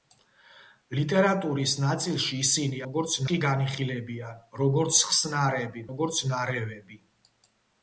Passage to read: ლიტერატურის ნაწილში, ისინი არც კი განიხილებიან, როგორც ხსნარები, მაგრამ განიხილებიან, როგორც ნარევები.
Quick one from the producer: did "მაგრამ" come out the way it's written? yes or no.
no